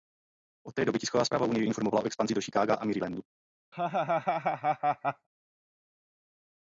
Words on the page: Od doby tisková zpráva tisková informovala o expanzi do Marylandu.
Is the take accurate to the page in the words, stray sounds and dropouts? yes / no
no